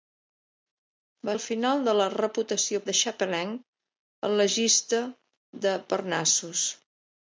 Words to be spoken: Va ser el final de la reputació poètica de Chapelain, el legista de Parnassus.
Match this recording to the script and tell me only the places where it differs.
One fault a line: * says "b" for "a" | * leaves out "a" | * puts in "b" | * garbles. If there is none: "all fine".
* leaves out "ser"
* leaves out "poètica"